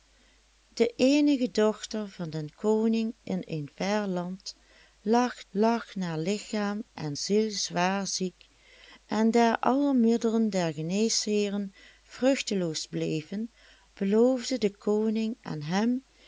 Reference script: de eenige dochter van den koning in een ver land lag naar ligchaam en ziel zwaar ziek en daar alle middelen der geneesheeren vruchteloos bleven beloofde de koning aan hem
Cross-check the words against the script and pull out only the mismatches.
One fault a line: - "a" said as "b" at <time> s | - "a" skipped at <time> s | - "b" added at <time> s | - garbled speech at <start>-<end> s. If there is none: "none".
- "lag" added at 5.5 s